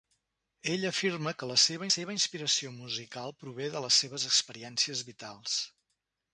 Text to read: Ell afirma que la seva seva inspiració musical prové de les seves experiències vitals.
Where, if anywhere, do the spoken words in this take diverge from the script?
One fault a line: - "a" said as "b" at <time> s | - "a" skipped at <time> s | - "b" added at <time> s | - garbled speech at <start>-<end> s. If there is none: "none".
none